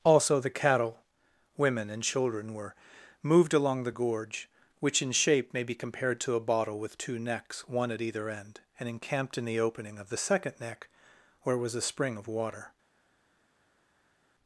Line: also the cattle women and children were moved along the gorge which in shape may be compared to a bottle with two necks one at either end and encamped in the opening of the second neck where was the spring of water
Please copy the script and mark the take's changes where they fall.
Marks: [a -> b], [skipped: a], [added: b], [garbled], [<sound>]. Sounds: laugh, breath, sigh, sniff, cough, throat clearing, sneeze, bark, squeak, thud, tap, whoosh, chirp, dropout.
also the cattle women and children were moved along the gorge which in shape may be compared to a bottle with two necks one at either end and encamped in the opening of the second neck where was [the -> a] spring of water